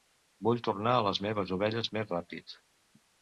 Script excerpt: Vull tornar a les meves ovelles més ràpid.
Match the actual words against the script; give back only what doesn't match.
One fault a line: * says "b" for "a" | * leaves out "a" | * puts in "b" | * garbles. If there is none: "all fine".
all fine